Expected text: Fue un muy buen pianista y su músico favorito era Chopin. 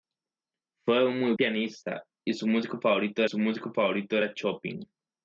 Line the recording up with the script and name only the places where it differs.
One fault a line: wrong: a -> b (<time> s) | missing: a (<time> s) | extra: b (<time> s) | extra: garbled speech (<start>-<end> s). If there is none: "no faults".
missing: buen (1.3 s)
extra: su músico favorito (3.2 s)